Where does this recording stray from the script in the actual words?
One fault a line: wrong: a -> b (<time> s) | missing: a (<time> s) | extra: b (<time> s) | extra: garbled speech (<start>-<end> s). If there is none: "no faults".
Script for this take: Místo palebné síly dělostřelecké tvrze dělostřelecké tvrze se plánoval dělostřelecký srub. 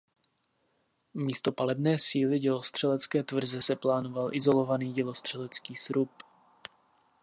missing: dělostřelecké tvrze (3.6 s)
extra: izolovaný (4.3 s)